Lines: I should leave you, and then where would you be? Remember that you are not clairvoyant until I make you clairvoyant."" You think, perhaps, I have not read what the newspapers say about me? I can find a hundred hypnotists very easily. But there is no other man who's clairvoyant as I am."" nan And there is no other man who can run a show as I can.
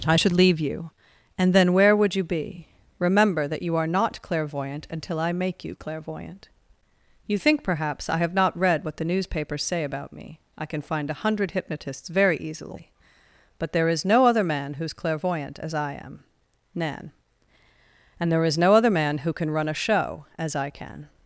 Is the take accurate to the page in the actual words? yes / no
yes